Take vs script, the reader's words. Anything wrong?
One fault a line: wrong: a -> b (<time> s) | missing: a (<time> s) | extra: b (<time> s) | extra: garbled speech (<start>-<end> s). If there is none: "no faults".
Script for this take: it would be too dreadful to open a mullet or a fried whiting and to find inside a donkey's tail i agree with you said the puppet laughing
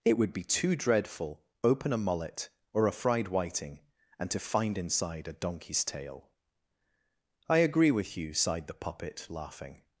missing: to (1.4 s)
wrong: said -> sighed (8.3 s)